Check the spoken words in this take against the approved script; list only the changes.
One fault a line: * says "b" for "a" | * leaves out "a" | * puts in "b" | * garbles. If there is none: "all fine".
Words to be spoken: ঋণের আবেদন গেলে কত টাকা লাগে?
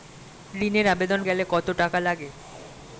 all fine